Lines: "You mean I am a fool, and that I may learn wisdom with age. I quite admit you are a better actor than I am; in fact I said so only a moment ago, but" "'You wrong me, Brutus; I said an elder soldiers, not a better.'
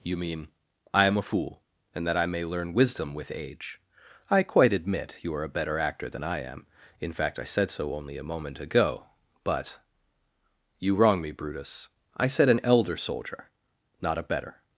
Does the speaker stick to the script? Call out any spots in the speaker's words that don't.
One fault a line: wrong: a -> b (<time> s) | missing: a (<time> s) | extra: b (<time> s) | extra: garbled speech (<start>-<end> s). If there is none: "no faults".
wrong: soldiers -> soldier (13.0 s)